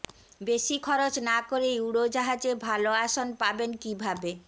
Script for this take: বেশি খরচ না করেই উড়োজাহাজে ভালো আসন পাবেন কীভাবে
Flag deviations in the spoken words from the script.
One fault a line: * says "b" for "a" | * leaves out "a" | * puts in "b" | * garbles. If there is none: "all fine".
all fine